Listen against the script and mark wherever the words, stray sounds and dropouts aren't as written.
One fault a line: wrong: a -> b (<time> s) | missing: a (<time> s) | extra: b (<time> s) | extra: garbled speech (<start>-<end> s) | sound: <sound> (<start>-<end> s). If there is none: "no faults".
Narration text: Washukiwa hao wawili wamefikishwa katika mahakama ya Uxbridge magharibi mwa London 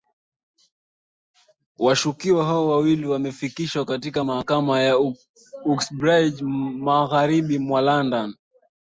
no faults